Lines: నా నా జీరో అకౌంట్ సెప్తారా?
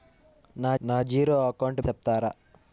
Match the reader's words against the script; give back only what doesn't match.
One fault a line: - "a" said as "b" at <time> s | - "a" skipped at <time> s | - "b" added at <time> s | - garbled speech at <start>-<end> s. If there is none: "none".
none